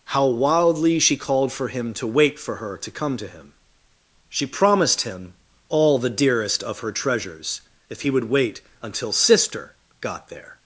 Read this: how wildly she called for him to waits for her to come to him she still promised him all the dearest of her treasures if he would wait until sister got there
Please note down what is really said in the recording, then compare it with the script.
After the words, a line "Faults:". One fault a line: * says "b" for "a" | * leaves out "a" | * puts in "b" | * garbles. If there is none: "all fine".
how wildly she called for him to wait for her to come to him she promised him all the dearest of her treasures if he would wait until sister got there
Faults:
* says "wait" for "waits"
* leaves out "still"